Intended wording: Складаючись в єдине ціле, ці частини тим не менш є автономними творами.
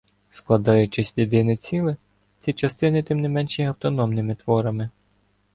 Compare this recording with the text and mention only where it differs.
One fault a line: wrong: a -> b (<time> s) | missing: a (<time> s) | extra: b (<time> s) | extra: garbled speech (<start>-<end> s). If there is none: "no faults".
no faults